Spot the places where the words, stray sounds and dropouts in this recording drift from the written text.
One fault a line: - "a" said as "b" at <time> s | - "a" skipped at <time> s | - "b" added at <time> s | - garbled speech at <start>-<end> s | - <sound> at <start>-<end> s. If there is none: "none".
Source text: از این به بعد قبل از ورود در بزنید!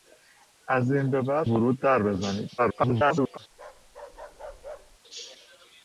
- "قبل از" skipped at 1.5 s
- garbled speech at 2.6-3.4 s
- bark at 3.5-5.0 s